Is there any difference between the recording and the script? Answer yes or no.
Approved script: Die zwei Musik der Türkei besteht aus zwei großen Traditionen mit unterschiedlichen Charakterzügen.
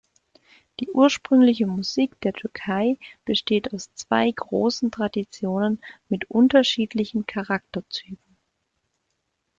yes